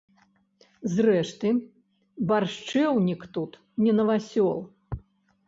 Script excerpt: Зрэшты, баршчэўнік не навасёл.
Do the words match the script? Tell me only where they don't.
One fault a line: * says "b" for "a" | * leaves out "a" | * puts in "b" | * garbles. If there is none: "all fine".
* puts in "тут"